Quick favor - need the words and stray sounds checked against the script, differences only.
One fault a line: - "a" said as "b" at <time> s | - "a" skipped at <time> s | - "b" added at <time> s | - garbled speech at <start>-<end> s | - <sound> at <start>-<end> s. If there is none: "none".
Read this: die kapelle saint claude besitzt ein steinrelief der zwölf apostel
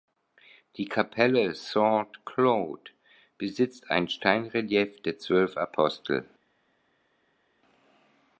none